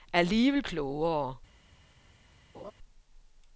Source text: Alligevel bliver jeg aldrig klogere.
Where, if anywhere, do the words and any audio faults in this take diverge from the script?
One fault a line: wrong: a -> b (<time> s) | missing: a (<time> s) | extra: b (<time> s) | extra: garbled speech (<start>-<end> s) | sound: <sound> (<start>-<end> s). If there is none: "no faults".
missing: bliver jeg aldrig (0.6 s)
sound: laugh (2.5-2.7 s)